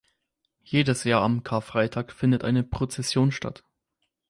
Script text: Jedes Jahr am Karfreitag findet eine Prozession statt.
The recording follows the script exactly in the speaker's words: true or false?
true